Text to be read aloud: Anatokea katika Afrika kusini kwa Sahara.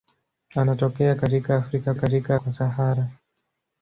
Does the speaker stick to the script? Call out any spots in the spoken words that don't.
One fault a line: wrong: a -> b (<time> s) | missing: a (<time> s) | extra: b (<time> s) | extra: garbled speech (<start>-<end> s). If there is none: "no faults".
wrong: kusini -> katika (2.0 s)